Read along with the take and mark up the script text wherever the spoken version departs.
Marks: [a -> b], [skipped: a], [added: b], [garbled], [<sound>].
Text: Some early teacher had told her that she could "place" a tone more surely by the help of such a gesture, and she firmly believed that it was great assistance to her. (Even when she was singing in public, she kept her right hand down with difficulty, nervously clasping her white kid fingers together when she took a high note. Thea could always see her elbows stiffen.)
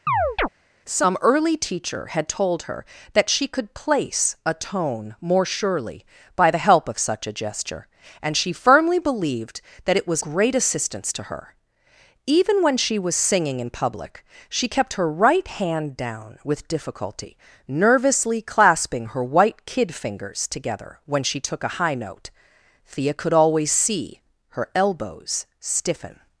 [chirp] Some early teacher had told her that she could "place" a tone more surely by the help of such a gesture, and she firmly believed that it was great assistance to her. (Even when she was singing in public, she kept her right hand down with difficulty, nervously clasping her white kid fingers together when she took a high note. Thea could always see her elbows stiffen.)